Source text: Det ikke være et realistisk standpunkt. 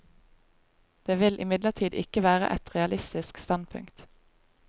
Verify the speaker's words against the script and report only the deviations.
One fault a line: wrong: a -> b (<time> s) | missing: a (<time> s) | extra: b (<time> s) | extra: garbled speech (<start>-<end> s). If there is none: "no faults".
extra: vil imidlertid (1.2 s)